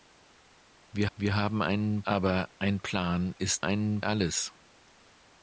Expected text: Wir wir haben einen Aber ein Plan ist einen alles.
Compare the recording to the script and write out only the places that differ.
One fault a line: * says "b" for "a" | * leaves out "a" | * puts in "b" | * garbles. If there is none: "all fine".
all fine